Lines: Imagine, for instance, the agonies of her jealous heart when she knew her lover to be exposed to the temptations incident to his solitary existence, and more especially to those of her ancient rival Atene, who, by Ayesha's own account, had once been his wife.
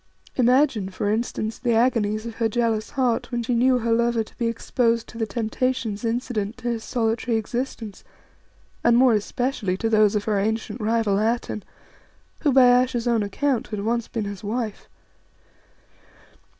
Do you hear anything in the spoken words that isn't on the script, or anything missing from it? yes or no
no